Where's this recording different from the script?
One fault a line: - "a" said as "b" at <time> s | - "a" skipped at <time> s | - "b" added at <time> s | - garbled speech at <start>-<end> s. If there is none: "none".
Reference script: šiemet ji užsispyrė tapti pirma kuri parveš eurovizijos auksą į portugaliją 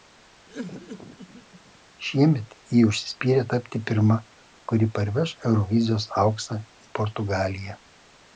none